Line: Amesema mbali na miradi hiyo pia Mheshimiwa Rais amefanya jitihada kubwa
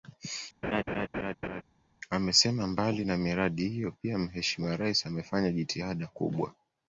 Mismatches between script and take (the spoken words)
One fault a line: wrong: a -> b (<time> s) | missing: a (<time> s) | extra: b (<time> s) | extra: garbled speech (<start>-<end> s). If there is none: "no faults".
no faults